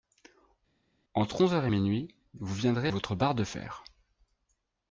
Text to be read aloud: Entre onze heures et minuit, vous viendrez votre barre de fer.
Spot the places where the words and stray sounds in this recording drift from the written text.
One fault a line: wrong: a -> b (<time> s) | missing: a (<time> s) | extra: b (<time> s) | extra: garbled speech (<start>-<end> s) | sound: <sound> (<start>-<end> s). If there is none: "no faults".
no faults